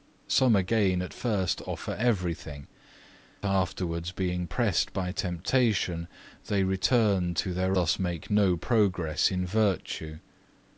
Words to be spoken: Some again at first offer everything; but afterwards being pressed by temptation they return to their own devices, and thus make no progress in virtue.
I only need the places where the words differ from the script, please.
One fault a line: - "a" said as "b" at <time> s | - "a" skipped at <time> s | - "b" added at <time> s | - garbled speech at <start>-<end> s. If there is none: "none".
- "but" skipped at 2.6 s
- "own devices and" skipped at 7.8 s